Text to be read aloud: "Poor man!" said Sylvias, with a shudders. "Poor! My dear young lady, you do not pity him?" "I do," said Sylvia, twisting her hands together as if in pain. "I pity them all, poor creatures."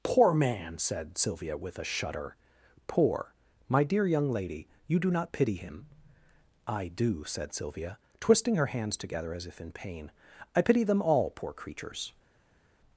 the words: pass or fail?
fail